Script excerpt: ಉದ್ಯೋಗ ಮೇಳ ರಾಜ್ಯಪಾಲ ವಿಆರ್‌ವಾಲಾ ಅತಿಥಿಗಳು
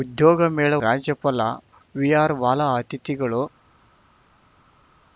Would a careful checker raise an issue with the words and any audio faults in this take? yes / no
no